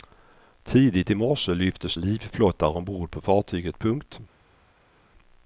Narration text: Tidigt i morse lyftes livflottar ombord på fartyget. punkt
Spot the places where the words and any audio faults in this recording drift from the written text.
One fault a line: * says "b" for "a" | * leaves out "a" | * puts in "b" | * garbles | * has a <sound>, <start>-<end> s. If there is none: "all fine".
all fine